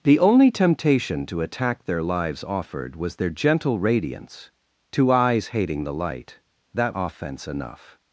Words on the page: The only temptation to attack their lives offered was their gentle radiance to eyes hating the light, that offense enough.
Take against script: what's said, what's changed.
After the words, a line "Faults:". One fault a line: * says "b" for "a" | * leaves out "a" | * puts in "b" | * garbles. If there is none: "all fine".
The only temptation to attack their lives offered was their gentle radiance to eyes hating the light, that offense enough.
Faults:
all fine